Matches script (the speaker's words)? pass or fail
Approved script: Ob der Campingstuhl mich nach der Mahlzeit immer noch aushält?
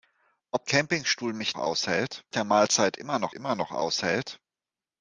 fail